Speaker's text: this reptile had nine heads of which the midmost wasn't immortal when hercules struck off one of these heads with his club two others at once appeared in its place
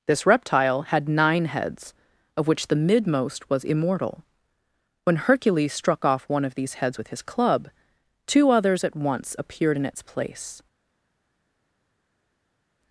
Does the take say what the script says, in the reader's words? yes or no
no